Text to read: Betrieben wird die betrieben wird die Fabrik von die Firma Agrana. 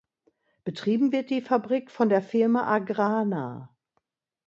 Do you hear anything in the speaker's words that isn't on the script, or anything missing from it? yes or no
yes